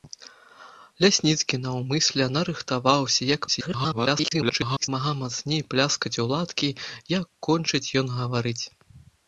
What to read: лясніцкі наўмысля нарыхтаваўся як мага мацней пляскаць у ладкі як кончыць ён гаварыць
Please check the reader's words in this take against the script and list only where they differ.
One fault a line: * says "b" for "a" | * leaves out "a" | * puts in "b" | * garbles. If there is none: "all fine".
* garbles